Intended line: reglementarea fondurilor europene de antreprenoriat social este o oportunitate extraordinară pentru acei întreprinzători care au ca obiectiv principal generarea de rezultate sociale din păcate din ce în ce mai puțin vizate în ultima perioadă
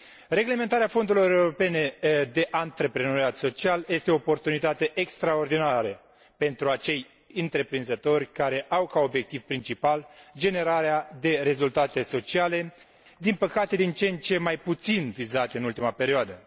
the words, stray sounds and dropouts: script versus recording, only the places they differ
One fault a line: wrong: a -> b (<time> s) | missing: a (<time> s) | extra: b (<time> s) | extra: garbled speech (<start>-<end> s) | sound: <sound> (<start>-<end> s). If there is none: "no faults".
no faults